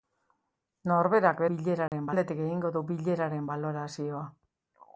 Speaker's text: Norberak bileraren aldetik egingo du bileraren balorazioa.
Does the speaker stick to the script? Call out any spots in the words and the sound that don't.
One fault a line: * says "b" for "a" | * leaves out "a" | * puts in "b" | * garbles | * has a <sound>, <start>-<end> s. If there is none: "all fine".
* has a dropout, 1.9-1.9 s